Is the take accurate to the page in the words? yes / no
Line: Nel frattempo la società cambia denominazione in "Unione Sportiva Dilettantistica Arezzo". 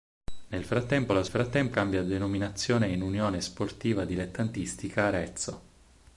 no